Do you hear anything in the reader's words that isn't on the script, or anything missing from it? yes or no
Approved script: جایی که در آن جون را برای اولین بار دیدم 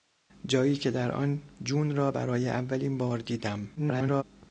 yes